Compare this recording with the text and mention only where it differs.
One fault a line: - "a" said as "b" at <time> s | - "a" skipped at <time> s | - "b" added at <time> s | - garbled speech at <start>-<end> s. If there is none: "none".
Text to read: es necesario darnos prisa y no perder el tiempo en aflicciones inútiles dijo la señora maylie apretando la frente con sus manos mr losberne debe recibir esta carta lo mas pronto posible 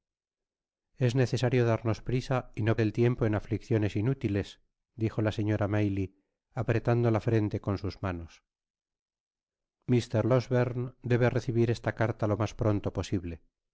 - "perder" skipped at 2.8 s